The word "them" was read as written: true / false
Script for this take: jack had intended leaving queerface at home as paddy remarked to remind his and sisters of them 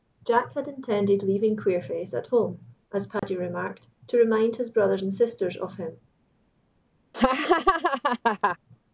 false